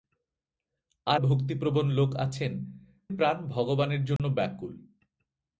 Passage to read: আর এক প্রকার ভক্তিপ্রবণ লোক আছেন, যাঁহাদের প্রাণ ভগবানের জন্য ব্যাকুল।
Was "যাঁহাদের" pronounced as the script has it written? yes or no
no